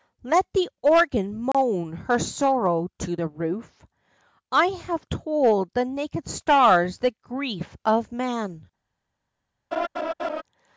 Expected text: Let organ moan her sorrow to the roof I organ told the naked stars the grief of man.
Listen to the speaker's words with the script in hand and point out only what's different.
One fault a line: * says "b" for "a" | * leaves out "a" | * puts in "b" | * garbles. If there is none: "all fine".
* puts in "the"
* says "have" for "organ"